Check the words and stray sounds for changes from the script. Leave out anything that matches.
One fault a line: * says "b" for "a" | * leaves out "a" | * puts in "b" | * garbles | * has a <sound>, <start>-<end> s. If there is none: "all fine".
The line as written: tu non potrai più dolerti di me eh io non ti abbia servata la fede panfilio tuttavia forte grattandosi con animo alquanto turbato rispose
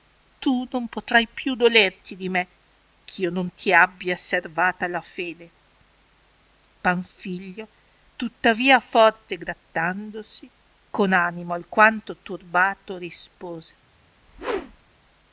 * has a whoosh, 14.2-15.0 s